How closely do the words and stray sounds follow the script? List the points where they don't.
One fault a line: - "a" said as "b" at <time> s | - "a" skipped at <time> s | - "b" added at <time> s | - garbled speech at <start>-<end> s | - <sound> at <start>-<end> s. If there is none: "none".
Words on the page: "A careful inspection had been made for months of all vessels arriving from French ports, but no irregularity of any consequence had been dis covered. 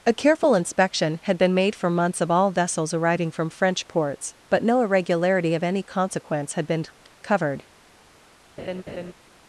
- "dis" skipped at 6.8 s
- laugh at 8.6-9.1 s